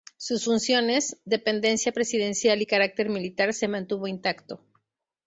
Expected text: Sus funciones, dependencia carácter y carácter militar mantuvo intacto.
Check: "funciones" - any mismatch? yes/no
no